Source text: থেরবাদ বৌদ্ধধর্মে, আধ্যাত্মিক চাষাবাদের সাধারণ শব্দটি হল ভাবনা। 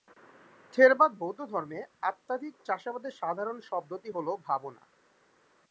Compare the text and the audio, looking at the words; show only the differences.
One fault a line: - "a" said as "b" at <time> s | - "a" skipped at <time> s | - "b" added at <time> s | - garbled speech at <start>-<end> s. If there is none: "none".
none